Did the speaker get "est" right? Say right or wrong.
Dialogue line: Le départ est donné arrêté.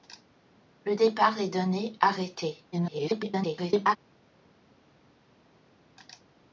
right